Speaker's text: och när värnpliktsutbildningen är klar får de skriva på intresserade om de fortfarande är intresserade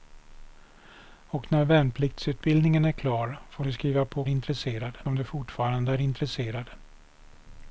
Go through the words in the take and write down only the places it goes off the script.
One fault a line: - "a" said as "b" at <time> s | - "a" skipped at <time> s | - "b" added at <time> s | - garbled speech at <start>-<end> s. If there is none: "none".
none